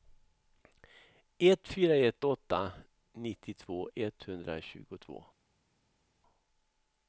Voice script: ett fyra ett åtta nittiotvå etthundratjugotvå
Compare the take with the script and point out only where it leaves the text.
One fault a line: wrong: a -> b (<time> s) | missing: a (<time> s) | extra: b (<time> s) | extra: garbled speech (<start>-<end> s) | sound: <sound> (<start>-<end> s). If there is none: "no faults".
no faults